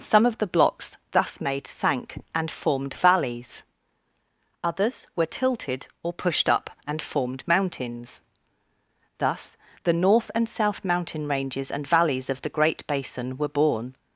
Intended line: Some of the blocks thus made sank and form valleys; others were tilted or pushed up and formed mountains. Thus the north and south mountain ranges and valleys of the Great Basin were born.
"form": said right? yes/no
no